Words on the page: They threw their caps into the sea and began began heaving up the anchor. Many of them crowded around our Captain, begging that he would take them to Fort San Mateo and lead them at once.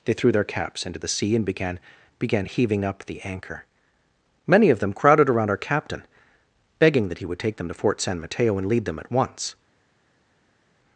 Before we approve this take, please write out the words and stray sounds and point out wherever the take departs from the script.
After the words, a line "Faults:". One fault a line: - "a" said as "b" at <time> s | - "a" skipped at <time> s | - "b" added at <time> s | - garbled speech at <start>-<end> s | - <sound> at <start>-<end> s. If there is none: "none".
They threw their caps into the sea and began began heaving up the anchor. Many of them crowded around our Captain, begging that he would take them to Fort San Mateo and lead them at once.
Faults:
none